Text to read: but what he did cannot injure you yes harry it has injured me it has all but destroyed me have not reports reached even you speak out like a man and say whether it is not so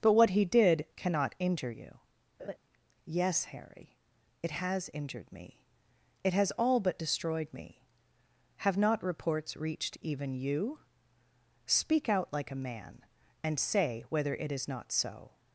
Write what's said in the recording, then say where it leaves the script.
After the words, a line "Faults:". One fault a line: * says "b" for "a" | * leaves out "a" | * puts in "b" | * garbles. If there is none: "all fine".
but what he did cannot injure you yes harry it has injured me it has all but destroyed me have not reports reached even you speak out like a man and say whether it is not so
Faults:
all fine